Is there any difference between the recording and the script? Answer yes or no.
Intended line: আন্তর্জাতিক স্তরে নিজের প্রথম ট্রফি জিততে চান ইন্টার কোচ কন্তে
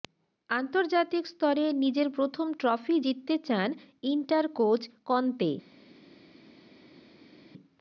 no